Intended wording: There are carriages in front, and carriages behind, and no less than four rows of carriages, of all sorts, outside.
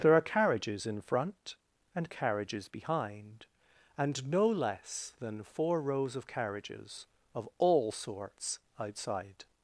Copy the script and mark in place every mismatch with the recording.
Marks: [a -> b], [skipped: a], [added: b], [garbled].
There are carriages in front, and carriages behind, and no less than four rows of carriages, of all sorts, outside.